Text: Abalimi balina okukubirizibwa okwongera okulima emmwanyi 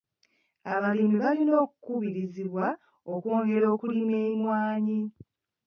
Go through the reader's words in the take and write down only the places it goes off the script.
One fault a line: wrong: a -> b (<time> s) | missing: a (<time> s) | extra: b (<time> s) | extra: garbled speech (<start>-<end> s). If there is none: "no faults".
no faults